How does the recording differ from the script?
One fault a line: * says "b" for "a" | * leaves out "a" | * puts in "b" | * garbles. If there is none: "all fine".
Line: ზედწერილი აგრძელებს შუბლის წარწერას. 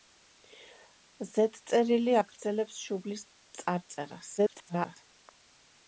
* garbles